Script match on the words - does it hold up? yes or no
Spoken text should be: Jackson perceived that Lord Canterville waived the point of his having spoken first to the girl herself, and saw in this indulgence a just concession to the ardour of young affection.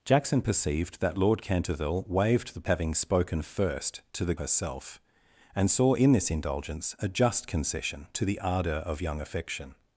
no